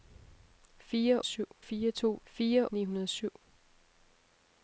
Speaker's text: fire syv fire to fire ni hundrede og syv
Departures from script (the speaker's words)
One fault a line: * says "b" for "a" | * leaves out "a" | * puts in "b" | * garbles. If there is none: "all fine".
all fine